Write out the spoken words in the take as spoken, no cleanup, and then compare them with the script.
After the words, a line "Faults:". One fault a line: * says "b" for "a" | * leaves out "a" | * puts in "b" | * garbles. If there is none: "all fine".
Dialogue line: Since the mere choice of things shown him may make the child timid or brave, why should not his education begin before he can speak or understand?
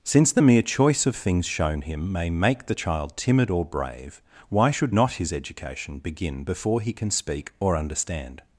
Since the mere choice of things shown him may make the child timid or brave, why should not his education begin before he can speak or understand?
Faults:
all fine